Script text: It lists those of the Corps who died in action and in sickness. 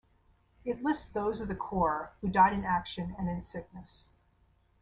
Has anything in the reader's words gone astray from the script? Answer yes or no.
no